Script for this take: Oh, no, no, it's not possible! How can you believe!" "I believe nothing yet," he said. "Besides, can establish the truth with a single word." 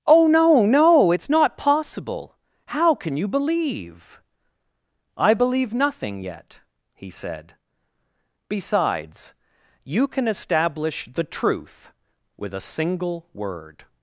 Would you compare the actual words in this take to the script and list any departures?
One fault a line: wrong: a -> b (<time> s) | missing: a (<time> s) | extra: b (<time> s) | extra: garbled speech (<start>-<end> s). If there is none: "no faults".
extra: you (9.8 s)